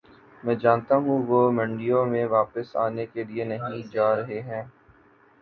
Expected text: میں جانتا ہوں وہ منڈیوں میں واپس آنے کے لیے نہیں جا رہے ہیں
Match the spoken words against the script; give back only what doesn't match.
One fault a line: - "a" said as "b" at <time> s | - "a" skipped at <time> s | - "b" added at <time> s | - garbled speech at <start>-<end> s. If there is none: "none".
none